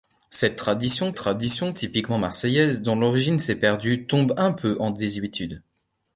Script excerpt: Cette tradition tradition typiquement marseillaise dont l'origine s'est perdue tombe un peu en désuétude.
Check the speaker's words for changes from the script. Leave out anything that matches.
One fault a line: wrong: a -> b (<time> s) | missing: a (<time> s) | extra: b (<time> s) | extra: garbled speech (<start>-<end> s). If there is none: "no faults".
no faults